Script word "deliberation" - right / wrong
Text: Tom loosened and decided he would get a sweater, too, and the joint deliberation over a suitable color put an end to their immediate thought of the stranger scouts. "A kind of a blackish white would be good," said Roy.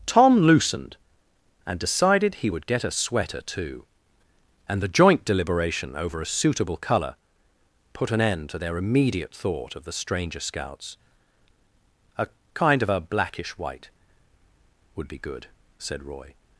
right